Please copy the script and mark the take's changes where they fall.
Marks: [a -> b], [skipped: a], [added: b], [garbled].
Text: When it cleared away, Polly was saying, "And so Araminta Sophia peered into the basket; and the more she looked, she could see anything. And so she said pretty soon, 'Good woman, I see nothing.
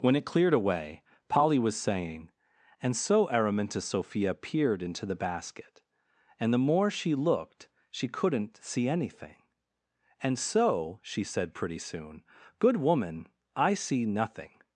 When it cleared away, Polly was saying, "And so Araminta Sophia peered into the basket; and the more she looked, she [could -> couldn't] see anything. And so she said pretty soon, 'Good woman, I see nothing.